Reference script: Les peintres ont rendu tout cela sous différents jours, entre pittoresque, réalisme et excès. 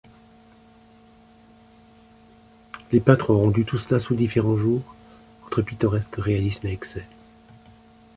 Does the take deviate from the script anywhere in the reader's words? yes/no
no